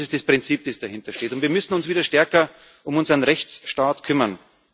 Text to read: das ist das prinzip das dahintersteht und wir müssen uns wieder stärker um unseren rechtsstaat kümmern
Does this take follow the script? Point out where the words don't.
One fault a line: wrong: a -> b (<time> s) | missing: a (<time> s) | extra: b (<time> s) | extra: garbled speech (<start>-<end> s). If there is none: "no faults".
no faults